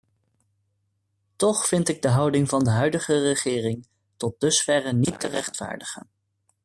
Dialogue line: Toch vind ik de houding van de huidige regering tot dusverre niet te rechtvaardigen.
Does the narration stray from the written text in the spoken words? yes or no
no